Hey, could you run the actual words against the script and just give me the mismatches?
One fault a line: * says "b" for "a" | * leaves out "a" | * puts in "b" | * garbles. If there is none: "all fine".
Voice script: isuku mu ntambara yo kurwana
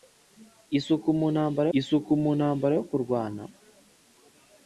* puts in "isuku mu ntambara"